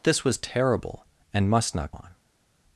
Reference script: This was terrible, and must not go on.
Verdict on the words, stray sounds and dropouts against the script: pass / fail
fail